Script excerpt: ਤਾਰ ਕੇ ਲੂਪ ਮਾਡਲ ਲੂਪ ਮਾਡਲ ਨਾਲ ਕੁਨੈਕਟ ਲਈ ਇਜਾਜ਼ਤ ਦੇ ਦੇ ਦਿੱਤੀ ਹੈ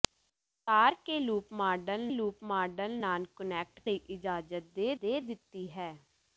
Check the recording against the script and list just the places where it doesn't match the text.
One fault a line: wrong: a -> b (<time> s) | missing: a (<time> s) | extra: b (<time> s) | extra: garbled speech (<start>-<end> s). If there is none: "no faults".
no faults